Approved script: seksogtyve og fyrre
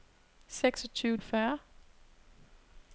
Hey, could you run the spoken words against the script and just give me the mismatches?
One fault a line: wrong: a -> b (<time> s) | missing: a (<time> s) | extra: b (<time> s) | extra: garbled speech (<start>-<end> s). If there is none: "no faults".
no faults